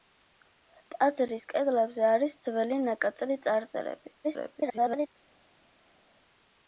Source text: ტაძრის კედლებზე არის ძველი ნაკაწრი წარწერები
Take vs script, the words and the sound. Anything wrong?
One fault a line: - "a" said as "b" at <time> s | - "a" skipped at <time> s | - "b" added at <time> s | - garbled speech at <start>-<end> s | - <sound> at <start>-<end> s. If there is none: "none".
- garbled speech at 4.2-5.1 s